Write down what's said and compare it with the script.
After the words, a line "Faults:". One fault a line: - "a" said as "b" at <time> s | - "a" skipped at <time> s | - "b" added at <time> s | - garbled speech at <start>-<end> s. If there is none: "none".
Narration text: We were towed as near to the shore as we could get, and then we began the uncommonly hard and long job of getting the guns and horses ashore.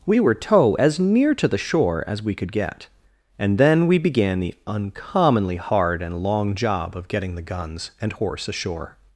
We were tow as near to the shore as we could get, and then we began the uncommonly hard and long job of getting the guns and horse ashore.
Faults:
- "towed" said as "tow" at 0.3 s
- "horses" said as "horse" at 8.1 s